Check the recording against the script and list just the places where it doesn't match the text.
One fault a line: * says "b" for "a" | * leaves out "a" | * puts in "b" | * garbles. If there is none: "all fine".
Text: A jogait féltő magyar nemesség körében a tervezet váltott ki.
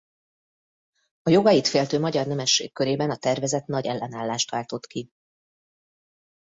* puts in "nagy ellenállást"